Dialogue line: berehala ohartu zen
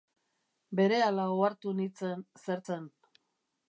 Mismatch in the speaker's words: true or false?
true